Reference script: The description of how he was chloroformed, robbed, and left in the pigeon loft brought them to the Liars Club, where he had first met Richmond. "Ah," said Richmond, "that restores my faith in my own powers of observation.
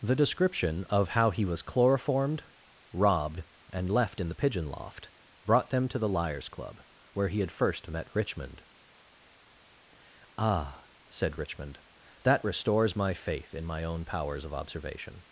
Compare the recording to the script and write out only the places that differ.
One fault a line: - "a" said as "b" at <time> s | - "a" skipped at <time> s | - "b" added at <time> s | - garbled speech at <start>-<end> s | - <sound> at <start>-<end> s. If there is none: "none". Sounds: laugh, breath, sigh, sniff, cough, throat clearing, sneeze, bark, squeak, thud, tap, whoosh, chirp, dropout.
none